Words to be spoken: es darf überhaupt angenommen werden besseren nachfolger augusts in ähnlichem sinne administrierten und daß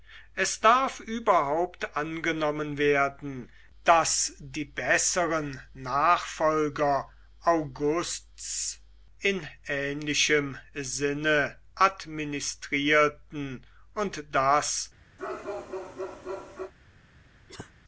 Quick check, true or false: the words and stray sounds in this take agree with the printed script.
false